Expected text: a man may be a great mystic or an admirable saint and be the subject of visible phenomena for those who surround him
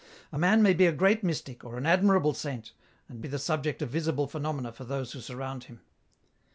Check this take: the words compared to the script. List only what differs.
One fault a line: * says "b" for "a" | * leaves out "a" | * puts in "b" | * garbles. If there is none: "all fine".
all fine